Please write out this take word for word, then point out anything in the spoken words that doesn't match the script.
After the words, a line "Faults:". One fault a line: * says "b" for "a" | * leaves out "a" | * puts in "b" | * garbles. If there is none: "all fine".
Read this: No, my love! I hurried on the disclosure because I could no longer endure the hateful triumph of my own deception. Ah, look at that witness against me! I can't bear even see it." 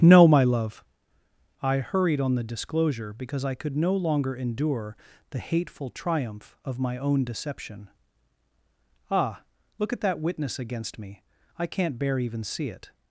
No, my love! I hurried on the disclosure because I could no longer endure the hateful triumph of my own deception. Ah, look at that witness against me! I can't bear even see it."
Faults:
all fine